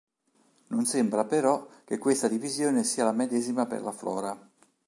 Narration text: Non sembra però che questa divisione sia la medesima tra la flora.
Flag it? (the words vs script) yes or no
yes